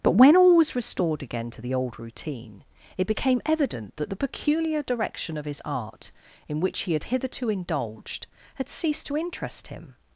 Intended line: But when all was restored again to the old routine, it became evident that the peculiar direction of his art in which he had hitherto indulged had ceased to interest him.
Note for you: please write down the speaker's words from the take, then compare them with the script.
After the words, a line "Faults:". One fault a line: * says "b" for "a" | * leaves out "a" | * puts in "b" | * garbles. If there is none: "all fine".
But when all was restored again to the old routine, it became evident that the peculiar direction of his art in which he had hitherto indulged had ceased to interest him.
Faults:
all fine